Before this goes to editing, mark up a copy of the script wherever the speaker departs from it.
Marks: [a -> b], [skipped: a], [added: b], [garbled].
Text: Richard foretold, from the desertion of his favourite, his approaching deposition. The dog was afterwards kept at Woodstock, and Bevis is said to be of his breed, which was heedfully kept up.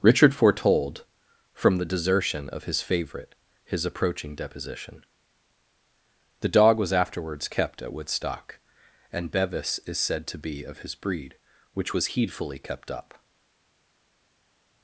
Richard foretold, from the desertion of his favourite, his approaching deposition. The dog was afterwards kept at Woodstock, and Bevis is said to be of his breed, which was heedfully kept up.